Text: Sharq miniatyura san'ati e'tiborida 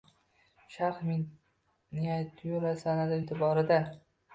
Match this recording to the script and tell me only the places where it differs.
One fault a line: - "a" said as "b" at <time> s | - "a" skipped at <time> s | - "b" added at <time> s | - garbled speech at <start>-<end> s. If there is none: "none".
none